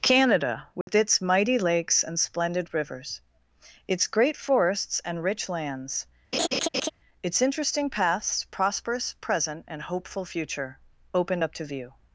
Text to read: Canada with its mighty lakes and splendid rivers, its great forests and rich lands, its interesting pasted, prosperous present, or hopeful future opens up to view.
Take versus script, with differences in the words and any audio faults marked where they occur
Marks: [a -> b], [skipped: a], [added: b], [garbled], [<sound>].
Canada with [dropout] its mighty lakes and splendid rivers, its great forests and rich lands, [laugh] its interesting [pasted, -> past] prosperous present, [or -> and] hopeful future [opens -> opened] up to view.